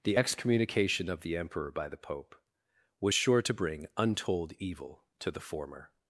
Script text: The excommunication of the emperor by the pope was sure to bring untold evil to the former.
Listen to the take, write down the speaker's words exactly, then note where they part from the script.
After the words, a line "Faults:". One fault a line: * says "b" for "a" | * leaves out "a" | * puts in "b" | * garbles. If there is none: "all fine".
The excommunication of the emperor by the pope was sure to bring untold evil to the former.
Faults:
all fine